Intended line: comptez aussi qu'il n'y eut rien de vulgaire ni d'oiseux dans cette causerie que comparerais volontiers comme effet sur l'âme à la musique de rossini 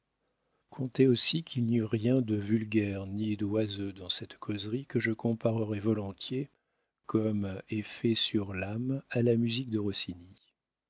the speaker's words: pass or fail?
fail